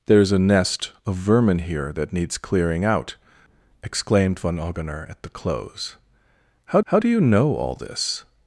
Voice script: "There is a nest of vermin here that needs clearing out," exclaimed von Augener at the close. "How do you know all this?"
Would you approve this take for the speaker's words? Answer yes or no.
no